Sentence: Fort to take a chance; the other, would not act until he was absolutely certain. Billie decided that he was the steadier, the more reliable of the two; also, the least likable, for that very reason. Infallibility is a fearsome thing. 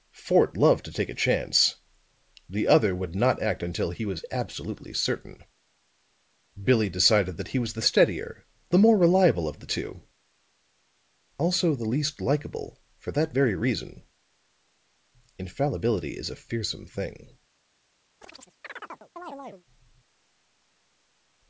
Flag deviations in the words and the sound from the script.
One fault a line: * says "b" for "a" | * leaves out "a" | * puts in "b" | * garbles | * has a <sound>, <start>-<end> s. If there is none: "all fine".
* puts in "loved"
* has a chirp, 18.2-19.7 s